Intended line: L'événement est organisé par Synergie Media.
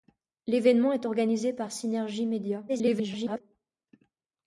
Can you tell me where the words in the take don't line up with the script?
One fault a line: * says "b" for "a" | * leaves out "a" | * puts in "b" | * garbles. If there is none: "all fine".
* garbles